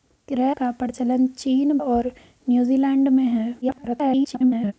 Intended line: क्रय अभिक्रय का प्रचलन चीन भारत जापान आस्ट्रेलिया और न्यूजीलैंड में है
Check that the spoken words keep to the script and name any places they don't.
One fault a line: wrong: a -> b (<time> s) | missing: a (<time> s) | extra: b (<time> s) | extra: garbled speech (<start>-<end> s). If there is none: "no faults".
missing: अभिक्रय (0.6 s)
missing: भारत जापान आस्ट्रेलिया (1.8 s)
extra: garbled speech (3.6-4.7 s)